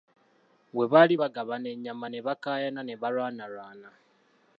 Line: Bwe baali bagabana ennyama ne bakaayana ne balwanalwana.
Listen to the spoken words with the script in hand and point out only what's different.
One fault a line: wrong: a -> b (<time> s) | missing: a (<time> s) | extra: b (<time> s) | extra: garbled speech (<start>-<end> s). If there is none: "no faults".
no faults